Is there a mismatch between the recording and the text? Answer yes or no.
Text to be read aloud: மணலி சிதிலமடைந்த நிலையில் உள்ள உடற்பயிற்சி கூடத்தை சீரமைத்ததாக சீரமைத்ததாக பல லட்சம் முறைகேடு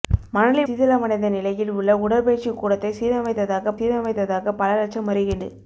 no